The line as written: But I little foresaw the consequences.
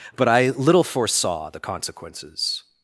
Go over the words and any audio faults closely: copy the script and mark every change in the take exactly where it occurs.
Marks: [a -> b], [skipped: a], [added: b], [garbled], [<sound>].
But I little foresaw the consequences.